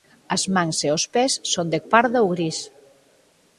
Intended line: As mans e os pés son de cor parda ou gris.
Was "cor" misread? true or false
true